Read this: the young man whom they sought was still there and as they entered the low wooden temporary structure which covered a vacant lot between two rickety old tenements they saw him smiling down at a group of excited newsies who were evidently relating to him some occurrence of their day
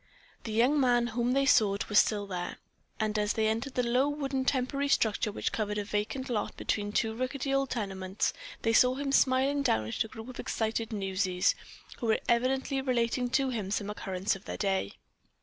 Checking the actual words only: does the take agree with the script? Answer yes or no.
yes